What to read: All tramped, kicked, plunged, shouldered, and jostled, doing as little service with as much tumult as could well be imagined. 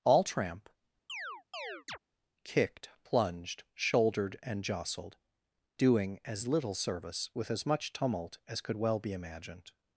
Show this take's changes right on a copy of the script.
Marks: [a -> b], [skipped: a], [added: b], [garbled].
All [tramped, -> tramp] kicked, plunged, shouldered, and jostled, doing as little service with as much tumult as could well be imagined.